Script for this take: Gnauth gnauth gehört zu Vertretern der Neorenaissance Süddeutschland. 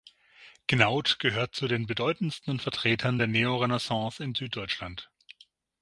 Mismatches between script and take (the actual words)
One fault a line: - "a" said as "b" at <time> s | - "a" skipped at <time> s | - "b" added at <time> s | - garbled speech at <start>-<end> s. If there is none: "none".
- "gnauth" skipped at 1.2 s
- "den bedeutendsten" added at 1.7 s
- "in" added at 4.2 s